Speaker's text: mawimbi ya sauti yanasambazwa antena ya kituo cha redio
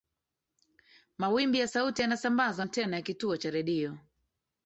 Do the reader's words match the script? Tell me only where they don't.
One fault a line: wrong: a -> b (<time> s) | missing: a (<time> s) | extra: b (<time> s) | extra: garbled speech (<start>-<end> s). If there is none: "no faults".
no faults